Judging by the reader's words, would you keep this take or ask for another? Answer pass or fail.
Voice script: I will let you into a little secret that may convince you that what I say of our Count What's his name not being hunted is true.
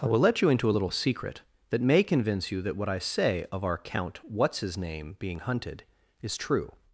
fail